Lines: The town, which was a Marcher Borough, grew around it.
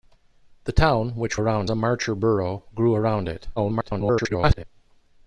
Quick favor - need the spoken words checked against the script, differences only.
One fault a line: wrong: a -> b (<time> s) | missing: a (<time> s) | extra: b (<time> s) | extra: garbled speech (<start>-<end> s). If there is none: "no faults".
wrong: was -> around (1.4 s)
extra: garbled speech (3.6-4.6 s)